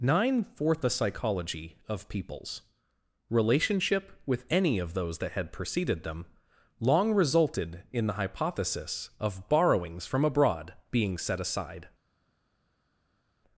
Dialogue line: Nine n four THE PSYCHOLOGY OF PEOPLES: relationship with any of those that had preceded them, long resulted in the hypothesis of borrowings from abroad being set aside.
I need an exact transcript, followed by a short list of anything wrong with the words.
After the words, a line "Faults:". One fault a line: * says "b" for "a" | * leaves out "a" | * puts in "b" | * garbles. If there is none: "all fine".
Nine fourth THE PSYCHOLOGY OF PEOPLES: relationship with any of those that had preceded them, long resulted in the hypothesis of borrowings from abroad being set aside.
Faults:
* says "fourth" for "n four"